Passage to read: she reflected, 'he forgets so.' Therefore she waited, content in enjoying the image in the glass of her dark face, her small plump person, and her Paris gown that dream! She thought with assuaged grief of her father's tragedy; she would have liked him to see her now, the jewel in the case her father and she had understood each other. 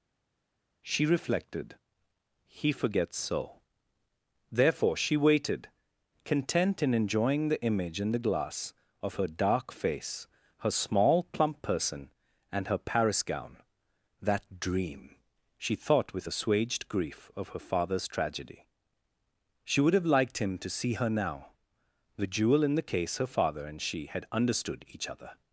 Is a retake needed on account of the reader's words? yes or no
no